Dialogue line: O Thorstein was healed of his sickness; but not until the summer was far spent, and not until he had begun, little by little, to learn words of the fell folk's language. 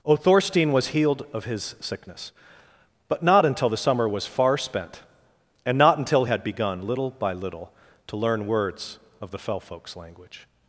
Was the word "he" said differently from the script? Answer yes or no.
yes